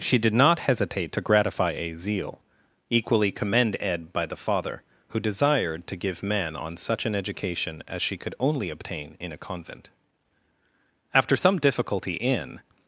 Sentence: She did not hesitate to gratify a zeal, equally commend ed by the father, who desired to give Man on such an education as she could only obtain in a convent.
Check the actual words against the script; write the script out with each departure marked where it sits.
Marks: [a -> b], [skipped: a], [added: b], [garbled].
She did not hesitate to gratify a zeal, equally commend ed by the father, who desired to give Man on such an education as she could only obtain in a convent. [added: After some difficulty in]